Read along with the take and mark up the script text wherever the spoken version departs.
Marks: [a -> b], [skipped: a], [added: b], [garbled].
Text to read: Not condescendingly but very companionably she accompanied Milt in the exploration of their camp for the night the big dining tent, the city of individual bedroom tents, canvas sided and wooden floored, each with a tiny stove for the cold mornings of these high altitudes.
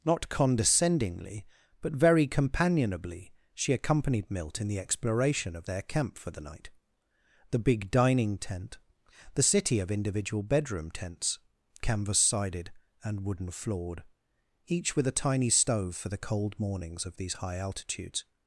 Not condescendingly but very companionably she accompanied Milt in the exploration of their camp for the night the big dining tent, the city of individual bedroom tents, canvas sided and wooden floored, each with a tiny stove for the cold mornings of these high altitudes.